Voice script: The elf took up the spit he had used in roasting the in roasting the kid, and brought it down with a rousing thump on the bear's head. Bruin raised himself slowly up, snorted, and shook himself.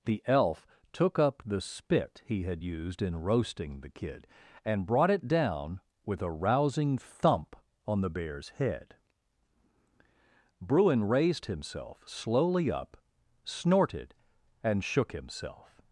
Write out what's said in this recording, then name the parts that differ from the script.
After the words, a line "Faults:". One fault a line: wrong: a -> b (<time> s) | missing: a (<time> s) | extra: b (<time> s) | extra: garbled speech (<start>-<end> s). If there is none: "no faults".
The elf took up the spit he had used in roasting the kid, and brought it down with a rousing thump on the bear's head. Bruin raised himself slowly up, snorted, and shook himself.
Faults:
missing: in roasting the (3.9 s)